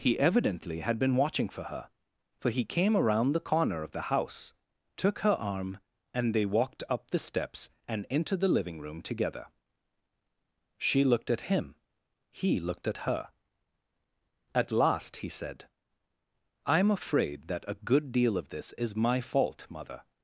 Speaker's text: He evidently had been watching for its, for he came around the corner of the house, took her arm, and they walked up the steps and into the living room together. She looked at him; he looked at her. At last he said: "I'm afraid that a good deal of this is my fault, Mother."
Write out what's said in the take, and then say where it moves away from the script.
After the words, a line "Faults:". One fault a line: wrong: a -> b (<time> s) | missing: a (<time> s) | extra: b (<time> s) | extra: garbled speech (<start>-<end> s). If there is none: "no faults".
He evidently had been watching for her, for he came around the corner of the house, took her arm, and they walked up the steps and into the living room together. She looked at him; he looked at her. At last he said: "I'm afraid that a good deal of this is my fault, Mother."
Faults:
wrong: its -> her (1.6 s)